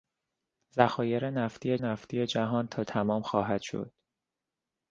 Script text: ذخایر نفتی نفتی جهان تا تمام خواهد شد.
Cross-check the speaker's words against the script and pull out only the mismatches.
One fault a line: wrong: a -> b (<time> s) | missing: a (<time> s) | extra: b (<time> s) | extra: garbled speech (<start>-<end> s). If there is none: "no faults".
no faults